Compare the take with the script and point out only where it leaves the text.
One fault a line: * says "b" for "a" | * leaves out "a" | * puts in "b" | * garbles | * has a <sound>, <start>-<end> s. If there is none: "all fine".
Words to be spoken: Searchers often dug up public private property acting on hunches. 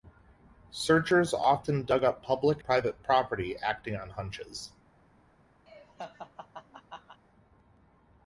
* has a laugh, 5.7-7.2 s